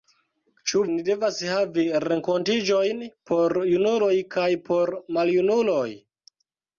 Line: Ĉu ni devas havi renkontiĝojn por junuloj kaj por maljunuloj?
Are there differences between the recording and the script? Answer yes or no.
no